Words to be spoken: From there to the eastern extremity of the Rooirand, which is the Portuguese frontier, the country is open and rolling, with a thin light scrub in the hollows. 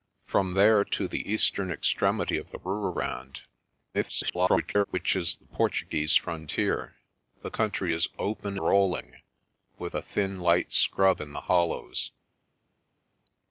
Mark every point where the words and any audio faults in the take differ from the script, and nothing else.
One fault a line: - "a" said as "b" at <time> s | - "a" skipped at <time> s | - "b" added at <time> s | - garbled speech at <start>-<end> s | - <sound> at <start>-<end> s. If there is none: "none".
- garbled speech at 3.9-4.8 s
- "and" skipped at 8.6 s